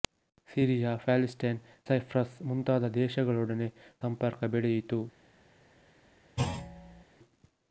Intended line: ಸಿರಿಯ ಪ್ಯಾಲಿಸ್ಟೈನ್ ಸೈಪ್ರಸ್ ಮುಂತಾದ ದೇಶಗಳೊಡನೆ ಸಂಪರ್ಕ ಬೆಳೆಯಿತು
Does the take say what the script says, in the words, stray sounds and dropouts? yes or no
no